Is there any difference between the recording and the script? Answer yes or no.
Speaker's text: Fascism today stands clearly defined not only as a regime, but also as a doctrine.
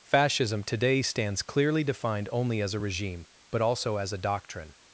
yes